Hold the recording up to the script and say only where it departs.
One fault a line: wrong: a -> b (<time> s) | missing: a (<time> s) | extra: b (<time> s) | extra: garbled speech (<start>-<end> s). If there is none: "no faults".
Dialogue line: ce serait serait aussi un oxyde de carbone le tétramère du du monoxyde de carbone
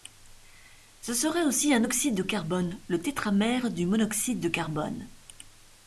missing: serait (1.4 s)
missing: du (3.8 s)